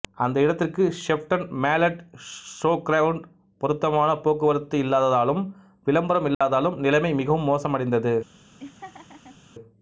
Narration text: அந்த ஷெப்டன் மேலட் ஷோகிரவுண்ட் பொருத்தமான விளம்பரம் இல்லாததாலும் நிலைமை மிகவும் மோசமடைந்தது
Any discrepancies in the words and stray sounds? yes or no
yes